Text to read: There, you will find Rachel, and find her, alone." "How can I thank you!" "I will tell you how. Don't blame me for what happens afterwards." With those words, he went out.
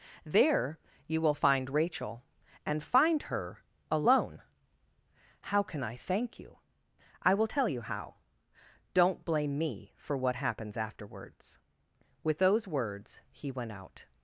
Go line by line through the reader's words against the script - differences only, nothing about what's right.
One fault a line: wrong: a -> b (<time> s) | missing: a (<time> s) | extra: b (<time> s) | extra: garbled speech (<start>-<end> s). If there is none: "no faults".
no faults